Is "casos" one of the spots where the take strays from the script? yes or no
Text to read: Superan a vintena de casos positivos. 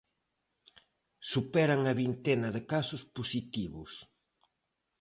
no